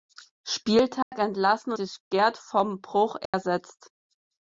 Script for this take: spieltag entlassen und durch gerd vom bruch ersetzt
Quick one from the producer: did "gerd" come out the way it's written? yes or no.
yes